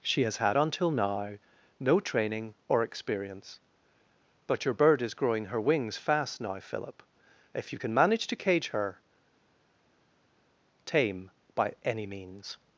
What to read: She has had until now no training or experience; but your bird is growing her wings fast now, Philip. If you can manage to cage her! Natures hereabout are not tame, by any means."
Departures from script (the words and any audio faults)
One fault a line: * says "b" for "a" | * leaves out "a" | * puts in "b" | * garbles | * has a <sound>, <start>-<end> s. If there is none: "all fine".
* leaves out "Natures hereabout are not"